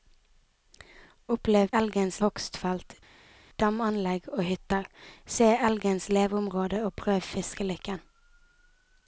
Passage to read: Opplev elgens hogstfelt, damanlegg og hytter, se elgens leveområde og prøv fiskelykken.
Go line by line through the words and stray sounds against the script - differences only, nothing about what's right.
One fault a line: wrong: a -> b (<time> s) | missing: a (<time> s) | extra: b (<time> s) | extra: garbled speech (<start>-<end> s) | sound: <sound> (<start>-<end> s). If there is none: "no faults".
no faults